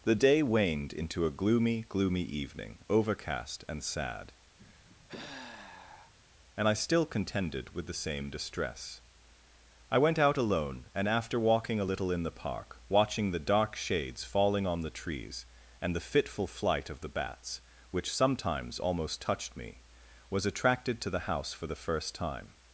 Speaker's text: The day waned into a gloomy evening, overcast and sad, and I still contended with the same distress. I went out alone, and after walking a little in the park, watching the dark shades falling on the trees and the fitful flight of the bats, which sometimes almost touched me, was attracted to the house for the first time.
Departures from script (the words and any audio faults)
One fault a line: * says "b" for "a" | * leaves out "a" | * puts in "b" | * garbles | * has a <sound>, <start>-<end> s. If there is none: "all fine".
* puts in "gloomy"
* has a sigh, 4.6-6.1 s